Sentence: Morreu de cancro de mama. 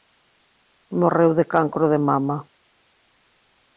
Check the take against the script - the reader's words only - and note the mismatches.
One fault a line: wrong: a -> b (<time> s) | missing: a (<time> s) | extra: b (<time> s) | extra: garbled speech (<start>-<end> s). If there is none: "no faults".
no faults